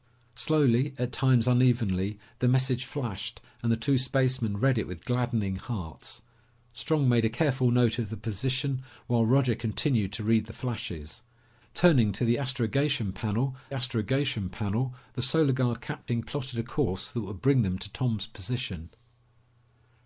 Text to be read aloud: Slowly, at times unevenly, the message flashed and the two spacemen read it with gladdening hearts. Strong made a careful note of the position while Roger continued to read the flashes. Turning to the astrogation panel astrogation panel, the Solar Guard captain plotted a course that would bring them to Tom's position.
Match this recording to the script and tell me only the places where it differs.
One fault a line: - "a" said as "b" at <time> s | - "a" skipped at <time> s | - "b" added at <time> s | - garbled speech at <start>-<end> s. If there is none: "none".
none